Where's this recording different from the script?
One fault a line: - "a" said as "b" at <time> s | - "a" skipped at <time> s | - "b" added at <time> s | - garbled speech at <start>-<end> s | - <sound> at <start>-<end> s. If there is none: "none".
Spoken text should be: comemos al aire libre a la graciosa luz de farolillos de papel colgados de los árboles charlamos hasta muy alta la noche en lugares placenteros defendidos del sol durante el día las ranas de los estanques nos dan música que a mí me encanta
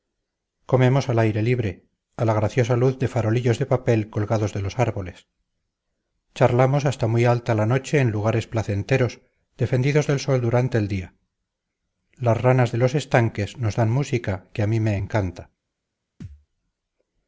- thud at 16.2-16.5 s